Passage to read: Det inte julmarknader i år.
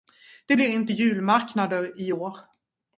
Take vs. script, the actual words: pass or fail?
fail